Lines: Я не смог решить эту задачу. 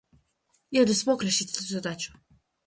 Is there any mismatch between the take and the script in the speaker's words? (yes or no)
no